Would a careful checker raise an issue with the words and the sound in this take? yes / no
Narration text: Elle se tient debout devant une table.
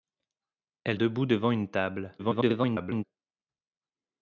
yes